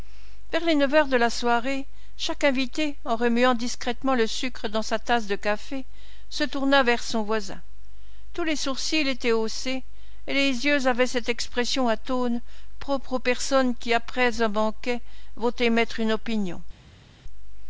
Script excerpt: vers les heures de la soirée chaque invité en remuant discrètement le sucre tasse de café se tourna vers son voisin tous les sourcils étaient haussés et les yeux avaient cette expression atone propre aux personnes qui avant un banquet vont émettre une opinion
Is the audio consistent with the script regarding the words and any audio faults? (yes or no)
no